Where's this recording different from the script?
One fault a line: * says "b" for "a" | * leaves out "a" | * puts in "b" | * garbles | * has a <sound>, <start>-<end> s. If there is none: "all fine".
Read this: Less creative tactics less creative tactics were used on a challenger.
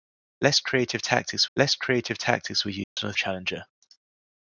* has a dropout, 2.8-3.0 s